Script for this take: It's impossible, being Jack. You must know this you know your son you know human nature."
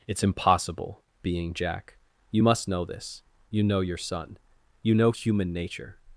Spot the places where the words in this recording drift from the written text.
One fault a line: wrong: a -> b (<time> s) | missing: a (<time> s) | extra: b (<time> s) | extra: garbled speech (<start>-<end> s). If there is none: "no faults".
no faults